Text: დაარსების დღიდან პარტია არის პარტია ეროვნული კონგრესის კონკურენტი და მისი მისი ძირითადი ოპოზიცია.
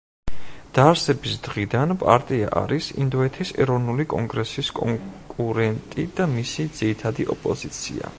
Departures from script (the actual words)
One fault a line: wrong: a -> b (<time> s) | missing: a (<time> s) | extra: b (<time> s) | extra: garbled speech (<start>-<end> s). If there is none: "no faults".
wrong: პარტია -> ინდოეთის (3.0 s)
missing: მისი (6.7 s)